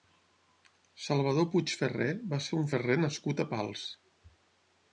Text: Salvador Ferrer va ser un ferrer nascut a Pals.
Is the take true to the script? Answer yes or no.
no